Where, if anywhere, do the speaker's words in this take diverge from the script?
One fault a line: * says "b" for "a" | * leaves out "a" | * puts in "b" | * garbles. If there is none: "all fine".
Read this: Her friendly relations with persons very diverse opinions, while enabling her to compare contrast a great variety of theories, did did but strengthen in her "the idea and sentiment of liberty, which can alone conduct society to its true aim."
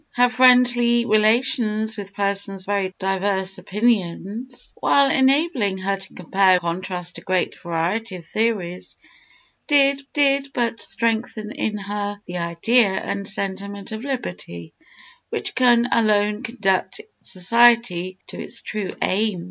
all fine